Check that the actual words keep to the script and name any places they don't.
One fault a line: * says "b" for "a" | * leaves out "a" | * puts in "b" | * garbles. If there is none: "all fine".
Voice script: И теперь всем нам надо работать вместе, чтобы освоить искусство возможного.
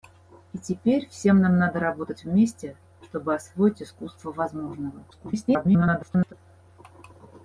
* garbles